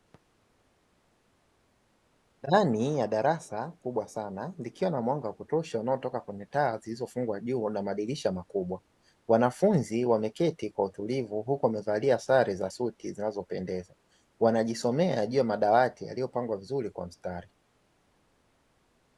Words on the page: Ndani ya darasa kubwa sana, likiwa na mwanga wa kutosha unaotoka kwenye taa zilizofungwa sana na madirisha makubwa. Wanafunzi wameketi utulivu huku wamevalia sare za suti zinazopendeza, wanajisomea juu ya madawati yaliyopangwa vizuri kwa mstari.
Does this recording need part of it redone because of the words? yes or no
yes